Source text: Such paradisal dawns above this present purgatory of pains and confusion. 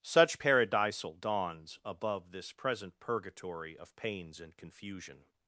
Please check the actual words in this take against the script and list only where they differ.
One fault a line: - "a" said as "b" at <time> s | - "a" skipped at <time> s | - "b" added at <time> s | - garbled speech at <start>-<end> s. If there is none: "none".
none